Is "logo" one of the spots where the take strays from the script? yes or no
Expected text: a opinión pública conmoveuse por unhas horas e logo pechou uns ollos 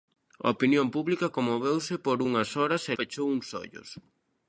yes